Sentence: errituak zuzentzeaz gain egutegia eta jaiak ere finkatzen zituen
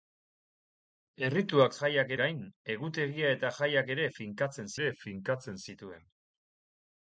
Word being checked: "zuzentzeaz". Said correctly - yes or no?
no